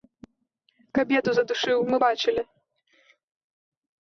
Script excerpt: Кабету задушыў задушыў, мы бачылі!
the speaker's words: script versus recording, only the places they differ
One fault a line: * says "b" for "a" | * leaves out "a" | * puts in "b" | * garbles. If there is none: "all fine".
* leaves out "задушыў"